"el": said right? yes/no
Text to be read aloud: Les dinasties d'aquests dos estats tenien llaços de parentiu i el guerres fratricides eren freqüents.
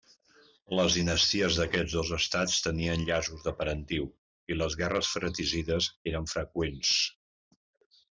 no